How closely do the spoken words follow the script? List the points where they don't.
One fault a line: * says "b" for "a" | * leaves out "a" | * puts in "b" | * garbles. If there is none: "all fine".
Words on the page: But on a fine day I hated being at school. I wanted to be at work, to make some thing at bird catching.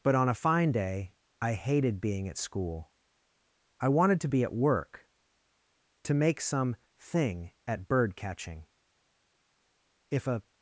* puts in "If a"